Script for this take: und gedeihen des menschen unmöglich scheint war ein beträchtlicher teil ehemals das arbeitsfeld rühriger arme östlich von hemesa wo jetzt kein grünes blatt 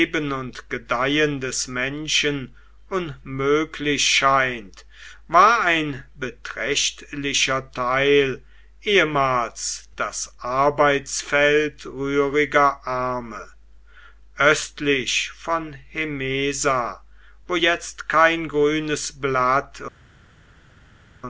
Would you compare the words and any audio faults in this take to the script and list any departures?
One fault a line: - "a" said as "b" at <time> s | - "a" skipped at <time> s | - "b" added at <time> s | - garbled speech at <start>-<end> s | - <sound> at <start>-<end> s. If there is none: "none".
none